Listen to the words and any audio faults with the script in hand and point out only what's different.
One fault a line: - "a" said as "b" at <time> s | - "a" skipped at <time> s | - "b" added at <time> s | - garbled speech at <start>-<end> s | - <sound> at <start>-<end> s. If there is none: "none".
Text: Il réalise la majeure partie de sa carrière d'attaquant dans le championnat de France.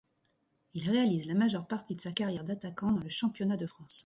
none